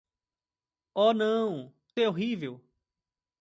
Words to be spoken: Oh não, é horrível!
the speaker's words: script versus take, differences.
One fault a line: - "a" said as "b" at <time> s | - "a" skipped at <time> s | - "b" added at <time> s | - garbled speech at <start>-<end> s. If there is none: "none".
none